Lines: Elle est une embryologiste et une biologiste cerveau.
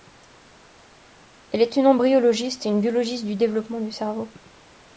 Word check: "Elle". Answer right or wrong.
right